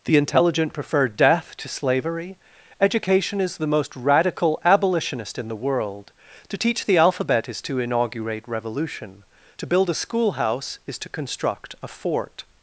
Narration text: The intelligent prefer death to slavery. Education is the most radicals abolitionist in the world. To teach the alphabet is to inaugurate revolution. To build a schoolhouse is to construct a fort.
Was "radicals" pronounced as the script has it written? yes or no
no